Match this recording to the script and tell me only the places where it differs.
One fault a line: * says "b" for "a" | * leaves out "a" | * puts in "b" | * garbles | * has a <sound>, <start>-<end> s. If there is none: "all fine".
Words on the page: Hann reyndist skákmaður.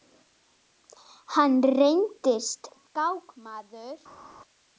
all fine